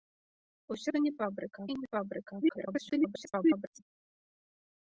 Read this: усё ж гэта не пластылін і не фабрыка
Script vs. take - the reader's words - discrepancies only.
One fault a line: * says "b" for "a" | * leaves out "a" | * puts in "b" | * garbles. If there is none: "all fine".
* leaves out "ж"
* says "фабрыка" for "пластылін"
* garbles